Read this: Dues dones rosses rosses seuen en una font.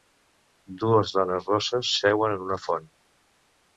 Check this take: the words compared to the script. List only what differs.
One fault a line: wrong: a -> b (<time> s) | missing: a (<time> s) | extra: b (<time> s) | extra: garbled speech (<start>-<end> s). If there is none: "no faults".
missing: rosses (1.9 s)